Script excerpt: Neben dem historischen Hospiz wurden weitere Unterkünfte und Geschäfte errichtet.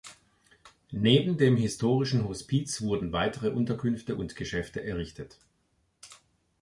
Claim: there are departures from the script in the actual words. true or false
false